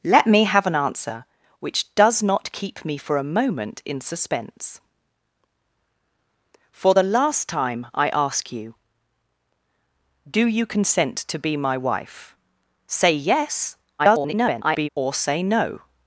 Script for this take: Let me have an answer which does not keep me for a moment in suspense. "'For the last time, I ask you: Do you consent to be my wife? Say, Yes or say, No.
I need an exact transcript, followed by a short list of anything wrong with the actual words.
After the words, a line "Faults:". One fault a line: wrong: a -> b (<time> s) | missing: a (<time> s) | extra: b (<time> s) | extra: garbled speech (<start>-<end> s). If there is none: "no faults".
Let me have an answer which does not keep me for a moment in suspense. "'For the last time, I ask you: Do you consent to be my wife? Say, Yes [garbled] or say, No.
Faults:
extra: garbled speech (14.0-14.9 s)